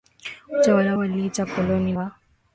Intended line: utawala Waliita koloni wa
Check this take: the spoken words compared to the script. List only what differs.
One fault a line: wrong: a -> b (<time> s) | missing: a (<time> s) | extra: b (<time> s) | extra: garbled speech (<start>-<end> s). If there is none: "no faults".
no faults